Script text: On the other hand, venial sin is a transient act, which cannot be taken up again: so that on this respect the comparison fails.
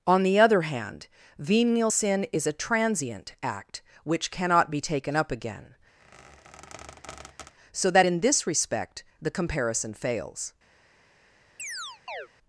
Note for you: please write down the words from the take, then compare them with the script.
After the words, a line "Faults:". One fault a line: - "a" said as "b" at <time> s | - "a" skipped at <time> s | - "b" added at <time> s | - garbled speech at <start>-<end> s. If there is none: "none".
On the other hand, venial sin is a transient act, which cannot be taken up again: so that in this respect the comparison fails.
Faults:
- "on" said as "in" at 8.0 s